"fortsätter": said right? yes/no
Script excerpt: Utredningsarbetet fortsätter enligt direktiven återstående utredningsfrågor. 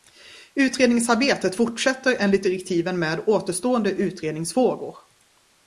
yes